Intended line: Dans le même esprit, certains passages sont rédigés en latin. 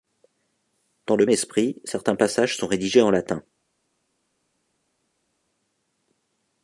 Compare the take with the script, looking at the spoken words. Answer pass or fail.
fail